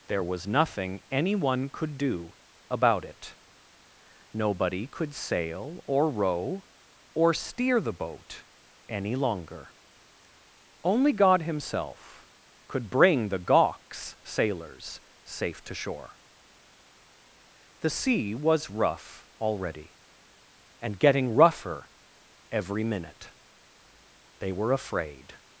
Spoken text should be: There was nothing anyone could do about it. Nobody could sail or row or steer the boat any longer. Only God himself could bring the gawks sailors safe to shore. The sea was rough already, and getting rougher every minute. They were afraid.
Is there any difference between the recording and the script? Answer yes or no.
no